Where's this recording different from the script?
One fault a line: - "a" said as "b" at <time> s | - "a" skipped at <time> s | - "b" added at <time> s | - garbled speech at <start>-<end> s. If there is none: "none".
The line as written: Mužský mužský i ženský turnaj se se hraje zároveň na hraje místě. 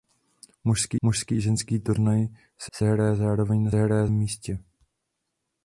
none